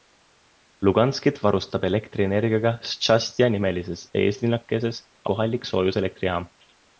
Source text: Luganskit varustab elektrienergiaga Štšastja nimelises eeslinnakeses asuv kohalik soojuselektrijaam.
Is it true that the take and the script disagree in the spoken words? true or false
true